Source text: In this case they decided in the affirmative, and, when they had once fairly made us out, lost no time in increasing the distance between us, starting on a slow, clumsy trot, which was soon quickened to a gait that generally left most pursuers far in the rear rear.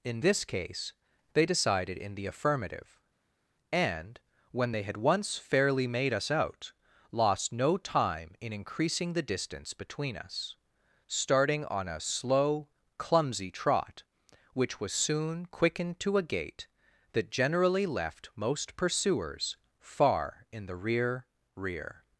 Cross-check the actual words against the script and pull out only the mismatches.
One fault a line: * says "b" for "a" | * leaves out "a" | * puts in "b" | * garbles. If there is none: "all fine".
all fine